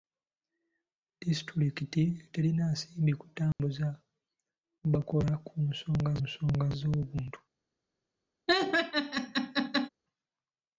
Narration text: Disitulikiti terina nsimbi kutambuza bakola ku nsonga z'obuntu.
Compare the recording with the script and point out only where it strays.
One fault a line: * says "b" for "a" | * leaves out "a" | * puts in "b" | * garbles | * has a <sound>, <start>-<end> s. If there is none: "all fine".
* has a dropout, 3.5-3.6 s
* puts in "nsonga"
* has a laugh, 8.5-9.9 s